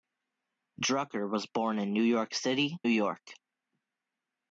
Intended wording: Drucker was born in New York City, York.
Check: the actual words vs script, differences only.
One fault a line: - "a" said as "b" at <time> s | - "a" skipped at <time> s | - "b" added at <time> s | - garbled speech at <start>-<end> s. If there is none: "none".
none